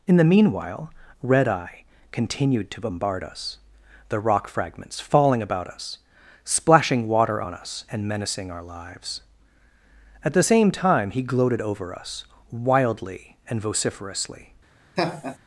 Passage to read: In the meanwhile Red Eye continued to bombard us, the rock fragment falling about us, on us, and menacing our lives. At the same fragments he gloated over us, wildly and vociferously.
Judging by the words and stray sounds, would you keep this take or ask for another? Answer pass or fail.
fail